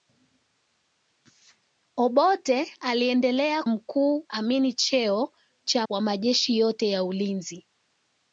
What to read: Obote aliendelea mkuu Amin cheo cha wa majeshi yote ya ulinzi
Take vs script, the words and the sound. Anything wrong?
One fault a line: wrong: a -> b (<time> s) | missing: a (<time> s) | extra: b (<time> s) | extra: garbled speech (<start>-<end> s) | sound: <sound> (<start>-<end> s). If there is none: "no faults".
no faults